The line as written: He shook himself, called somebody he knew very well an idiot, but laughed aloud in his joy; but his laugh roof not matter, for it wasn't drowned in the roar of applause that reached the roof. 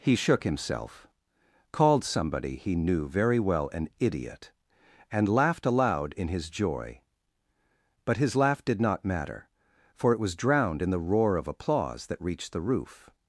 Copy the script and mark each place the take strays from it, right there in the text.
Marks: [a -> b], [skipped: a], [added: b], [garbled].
He shook himself, called somebody he knew very well an idiot, [but -> and] laughed aloud in his joy; but his laugh [roof -> did] not matter, for it [wasn't -> was] drowned in the roar of applause that reached the roof.